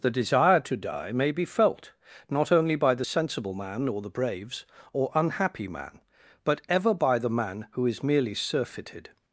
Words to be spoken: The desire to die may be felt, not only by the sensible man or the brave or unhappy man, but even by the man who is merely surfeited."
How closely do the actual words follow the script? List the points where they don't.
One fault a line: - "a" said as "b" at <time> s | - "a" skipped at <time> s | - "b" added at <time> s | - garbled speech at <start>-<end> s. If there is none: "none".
- "brave" said as "braves" at 4.1 s
- "even" said as "ever" at 6.7 s